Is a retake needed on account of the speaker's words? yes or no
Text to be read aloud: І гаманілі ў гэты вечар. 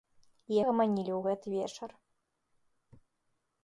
no